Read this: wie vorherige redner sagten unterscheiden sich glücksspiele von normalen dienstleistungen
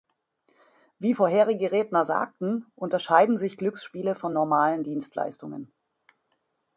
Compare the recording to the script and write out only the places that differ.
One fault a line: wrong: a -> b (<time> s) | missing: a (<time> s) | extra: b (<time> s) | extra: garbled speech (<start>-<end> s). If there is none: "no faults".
no faults